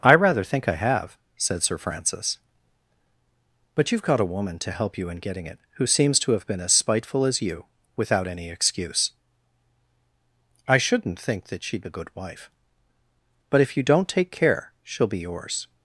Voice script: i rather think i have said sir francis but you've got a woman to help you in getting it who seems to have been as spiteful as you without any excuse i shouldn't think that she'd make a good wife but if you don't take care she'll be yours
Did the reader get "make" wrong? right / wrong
wrong